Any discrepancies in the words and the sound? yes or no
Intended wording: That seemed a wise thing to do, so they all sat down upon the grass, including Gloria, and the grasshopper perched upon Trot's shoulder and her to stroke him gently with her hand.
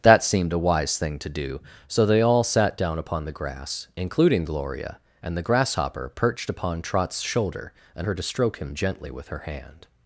no